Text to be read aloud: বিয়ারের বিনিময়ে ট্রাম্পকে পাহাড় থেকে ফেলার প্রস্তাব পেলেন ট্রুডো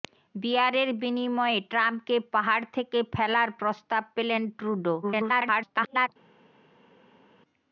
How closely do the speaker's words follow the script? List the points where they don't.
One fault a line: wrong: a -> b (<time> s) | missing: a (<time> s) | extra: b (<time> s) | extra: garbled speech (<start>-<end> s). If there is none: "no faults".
extra: garbled speech (5.0-6.1 s)